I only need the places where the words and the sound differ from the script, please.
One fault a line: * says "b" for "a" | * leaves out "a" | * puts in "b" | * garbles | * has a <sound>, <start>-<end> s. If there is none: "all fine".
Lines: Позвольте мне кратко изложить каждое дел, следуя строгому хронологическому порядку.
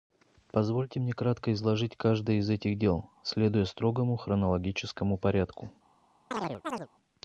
* puts in "из этих"
* has a chirp, 6.3-6.9 s